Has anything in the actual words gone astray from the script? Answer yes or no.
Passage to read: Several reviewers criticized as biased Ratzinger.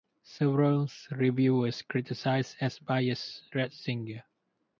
no